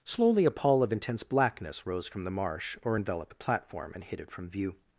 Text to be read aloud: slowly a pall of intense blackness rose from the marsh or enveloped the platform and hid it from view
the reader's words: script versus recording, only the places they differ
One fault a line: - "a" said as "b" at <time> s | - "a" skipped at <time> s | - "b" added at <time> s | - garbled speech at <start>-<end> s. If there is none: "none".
none